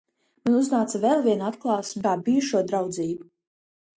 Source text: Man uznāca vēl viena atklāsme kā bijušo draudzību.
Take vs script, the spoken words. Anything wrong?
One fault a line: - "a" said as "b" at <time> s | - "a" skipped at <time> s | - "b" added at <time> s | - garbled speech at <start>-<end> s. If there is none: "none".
none